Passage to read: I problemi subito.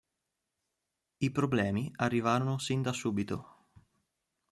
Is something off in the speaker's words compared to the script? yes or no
yes